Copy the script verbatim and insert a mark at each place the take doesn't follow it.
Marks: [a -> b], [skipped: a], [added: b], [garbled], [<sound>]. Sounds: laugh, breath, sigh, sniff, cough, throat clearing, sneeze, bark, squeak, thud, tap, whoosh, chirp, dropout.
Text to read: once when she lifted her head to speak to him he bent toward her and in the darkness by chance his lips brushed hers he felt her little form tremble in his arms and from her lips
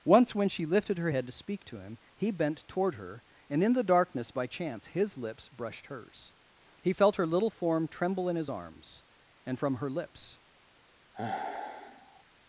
once when she lifted her head to speak to him he bent toward her and in the darkness by chance his lips brushed hers he felt her little form tremble in his arms and from her lips [sigh]